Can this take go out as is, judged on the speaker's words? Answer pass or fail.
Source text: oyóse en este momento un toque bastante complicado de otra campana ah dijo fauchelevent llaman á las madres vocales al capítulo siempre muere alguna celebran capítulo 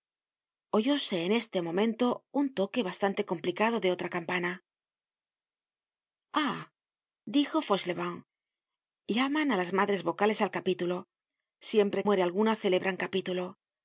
pass